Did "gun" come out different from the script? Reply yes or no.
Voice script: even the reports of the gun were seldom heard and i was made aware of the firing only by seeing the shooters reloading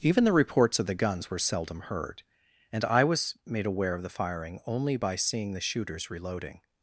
yes